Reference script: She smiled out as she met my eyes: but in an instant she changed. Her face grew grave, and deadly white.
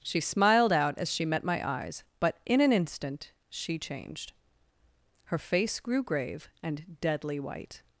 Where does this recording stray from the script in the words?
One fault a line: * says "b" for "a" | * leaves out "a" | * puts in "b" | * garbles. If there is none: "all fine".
all fine